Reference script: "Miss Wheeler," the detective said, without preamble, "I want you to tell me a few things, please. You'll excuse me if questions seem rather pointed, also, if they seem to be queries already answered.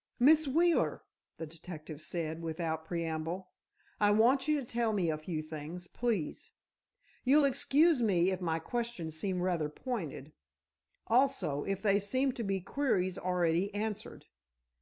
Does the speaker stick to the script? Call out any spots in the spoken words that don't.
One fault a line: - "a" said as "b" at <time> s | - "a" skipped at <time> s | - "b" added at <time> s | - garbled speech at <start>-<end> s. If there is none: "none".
- "my" added at 8.4 s